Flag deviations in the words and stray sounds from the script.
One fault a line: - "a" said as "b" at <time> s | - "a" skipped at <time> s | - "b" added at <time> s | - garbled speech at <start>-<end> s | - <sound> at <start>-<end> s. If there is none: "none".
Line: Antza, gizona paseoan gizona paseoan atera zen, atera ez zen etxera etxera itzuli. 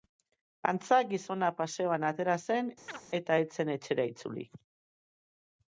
- "gizona paseoan" skipped at 2.0 s
- chirp at 2.9-3.0 s
- "atera" said as "eta" at 3.2 s
- "etxera" skipped at 4.1 s